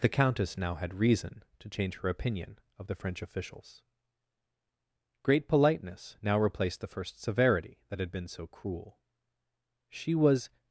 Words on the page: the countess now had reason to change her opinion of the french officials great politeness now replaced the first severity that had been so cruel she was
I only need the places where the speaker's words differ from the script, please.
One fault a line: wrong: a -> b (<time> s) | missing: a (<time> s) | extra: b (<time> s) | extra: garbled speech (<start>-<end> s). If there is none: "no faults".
no faults